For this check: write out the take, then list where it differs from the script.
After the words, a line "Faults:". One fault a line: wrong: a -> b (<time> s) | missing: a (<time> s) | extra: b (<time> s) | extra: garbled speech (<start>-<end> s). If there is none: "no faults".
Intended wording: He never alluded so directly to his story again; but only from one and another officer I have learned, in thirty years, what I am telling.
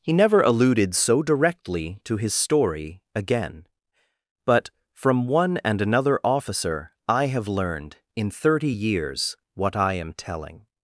He never alluded so directly to his story again; but from one and another officer I have learned, in thirty years, what I am telling.
Faults:
missing: only (4.7 s)